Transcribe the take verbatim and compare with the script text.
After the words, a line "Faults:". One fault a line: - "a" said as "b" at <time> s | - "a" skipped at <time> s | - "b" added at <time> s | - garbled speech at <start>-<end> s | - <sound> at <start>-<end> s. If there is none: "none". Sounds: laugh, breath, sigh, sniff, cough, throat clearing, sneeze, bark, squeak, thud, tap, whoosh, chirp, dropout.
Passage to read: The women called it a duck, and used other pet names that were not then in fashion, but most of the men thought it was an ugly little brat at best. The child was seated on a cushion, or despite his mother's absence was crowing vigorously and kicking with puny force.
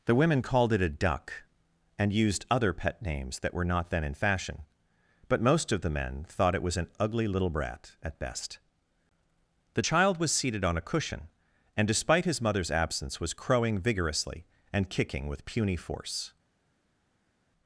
The women called it a duck, and used other pet names that were not then in fashion, but most of the men thought it was an ugly little brat at best. The child was seated on a cushion, and despite his mother's absence was crowing vigorously and kicking with puny force.
Faults:
- "or" said as "and" at 11.8 s